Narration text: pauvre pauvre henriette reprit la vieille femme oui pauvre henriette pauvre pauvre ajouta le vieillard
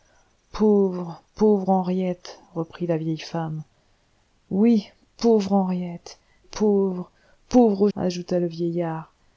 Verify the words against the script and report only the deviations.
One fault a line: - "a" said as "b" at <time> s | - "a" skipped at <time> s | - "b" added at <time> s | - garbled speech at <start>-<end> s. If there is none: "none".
none